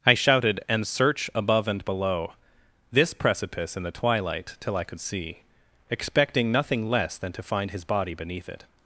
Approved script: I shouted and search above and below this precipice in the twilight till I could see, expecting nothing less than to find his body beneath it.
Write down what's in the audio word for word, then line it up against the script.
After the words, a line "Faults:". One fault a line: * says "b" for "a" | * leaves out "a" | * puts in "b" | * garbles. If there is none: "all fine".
I shouted and search above and below this precipice in the twilight till I could see, expecting nothing less than to find his body beneath it.
Faults:
all fine